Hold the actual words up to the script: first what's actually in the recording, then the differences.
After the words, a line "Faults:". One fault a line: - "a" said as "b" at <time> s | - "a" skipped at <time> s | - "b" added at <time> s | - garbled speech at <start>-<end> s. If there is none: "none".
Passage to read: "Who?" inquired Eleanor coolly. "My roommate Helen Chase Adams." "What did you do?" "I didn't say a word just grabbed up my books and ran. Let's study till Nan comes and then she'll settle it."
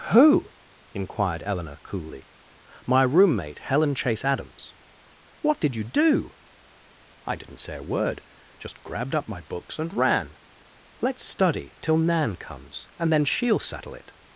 "Who?" inquired Eleanor coolly. "My roommate Helen Chase Adams." "What did you do?" "I didn't say a word just grabbed up my books and ran. Let's study till Nan comes and then she'll settle it."
Faults:
none